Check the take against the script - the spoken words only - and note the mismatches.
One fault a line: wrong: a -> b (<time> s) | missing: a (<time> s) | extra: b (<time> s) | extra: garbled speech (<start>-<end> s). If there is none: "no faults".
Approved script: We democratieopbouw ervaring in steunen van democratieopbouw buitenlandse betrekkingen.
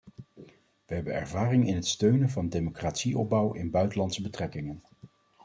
wrong: democratieopbouw -> hebben (0.9 s)
extra: het (1.8 s)
extra: in (3.5 s)